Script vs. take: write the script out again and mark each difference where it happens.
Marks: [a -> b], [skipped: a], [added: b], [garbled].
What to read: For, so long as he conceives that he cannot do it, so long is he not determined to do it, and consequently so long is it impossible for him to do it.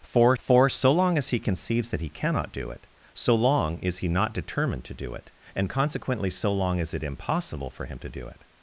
For, [added: for] so long as he conceives that he cannot do it, so long is he not determined to do it, and consequently so long is it impossible for him to do it.